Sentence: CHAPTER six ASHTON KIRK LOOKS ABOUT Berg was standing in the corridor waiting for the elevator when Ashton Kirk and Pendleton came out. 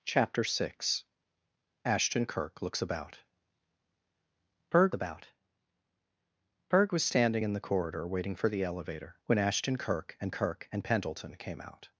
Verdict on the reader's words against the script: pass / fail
fail